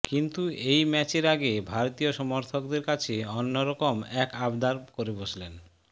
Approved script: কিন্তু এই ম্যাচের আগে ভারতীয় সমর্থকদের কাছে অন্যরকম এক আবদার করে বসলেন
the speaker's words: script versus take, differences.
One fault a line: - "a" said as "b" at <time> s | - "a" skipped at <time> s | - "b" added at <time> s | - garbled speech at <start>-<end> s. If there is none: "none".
none